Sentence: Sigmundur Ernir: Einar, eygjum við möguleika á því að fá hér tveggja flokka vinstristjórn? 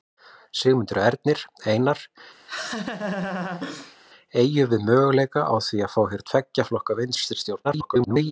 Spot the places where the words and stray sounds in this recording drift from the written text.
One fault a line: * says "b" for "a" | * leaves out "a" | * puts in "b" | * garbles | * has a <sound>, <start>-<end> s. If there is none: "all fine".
* has a laugh, 2.5-4.0 s
* garbles